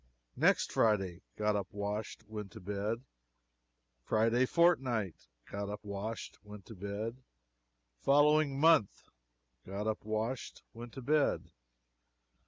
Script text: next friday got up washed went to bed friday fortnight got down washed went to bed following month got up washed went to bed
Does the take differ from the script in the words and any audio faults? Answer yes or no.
yes